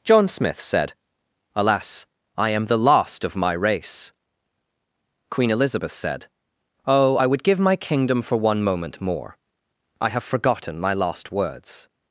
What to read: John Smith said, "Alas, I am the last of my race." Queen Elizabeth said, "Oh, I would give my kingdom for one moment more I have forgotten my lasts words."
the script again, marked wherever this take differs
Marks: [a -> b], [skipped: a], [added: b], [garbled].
John Smith said, "Alas, I am the last of my race." Queen Elizabeth said, "Oh, I would give my kingdom for one moment more I have forgotten my [lasts -> last] words."